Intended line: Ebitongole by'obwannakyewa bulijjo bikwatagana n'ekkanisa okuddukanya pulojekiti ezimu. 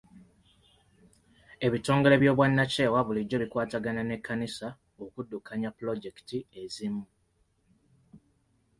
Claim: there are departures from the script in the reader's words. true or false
false